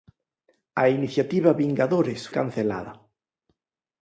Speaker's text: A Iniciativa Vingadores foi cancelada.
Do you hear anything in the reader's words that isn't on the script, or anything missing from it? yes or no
yes